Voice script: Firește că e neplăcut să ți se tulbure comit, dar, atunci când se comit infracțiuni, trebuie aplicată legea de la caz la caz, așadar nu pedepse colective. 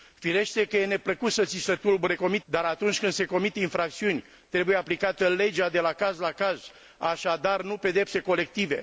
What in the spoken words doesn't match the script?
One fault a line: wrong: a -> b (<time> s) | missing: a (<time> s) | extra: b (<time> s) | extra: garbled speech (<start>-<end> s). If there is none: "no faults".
no faults